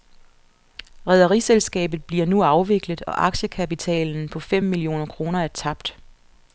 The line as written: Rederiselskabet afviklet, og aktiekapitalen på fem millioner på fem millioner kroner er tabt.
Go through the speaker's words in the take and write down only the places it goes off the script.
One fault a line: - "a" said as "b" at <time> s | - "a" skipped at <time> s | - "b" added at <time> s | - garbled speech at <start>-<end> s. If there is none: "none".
- "bliver nu" added at 2.0 s
- "på fem millioner" skipped at 5.1 s